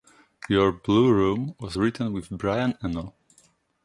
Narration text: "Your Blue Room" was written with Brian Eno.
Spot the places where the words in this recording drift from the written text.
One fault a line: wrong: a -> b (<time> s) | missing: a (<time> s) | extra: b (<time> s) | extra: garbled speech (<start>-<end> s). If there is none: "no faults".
no faults